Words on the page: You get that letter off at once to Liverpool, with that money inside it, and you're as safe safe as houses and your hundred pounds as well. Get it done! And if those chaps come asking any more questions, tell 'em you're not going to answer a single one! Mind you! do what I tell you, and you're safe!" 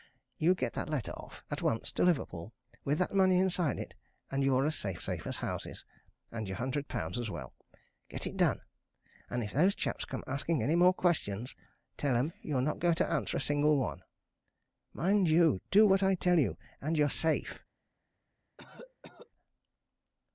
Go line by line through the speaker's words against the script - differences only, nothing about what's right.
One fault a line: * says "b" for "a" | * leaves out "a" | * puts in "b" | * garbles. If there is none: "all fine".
all fine